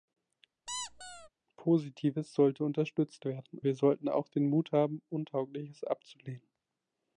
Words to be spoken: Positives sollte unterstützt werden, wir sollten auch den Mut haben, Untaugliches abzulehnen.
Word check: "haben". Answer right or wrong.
right